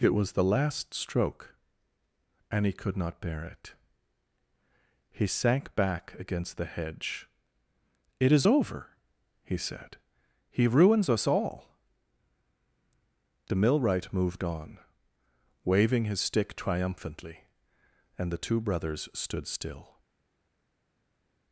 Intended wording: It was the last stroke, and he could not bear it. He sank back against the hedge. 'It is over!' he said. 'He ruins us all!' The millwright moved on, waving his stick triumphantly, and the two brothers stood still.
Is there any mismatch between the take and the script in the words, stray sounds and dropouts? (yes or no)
no